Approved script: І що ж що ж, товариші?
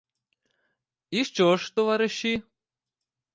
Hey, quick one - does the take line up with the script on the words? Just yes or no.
no